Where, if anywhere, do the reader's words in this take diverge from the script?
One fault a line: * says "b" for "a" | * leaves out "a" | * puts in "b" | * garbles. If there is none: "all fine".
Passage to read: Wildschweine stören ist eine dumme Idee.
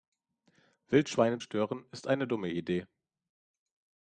all fine